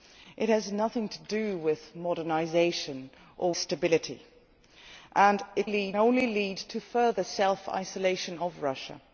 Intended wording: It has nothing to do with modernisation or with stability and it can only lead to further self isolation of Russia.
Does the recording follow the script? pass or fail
fail